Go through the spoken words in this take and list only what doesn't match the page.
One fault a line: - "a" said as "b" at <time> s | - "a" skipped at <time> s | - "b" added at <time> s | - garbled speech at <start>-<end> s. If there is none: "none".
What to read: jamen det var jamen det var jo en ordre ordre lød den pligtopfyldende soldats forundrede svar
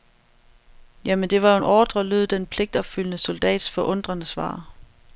- "jamen det var" skipped at 1.5 s
- "ordre" skipped at 2.0 s